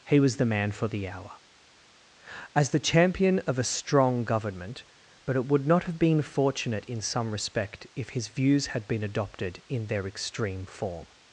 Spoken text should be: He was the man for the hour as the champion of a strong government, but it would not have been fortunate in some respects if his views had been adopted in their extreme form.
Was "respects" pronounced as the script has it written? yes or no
no